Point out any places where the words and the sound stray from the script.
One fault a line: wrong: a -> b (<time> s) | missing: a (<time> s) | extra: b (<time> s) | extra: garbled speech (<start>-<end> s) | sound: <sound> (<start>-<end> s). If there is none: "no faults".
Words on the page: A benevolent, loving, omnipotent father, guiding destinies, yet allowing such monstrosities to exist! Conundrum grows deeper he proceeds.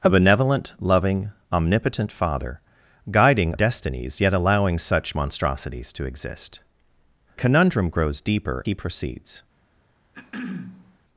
sound: throat clearing (10.1-11.0 s)